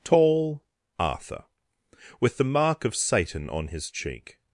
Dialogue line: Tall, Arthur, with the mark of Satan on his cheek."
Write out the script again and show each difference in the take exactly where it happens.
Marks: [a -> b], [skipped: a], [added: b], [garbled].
Tall, Arthur, with the mark of Satan on his cheek."